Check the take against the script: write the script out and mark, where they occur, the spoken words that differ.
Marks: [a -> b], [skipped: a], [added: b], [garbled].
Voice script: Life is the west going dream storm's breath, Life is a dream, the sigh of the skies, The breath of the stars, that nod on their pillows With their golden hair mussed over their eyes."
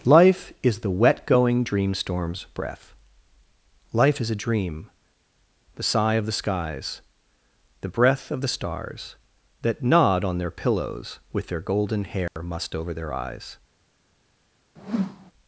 Life is the [west -> wet] going dream storm's breath, Life is a dream, the sigh of the skies, The breath of the stars, that nod on their pillows With their golden hair mussed over their eyes."